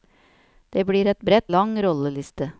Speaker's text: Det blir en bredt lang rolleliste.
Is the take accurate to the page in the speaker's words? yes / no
yes